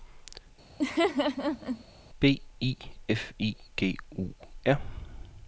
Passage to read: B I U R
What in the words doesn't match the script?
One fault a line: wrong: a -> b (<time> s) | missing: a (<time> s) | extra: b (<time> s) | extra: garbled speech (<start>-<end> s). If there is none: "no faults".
extra: F I G (3.1 s)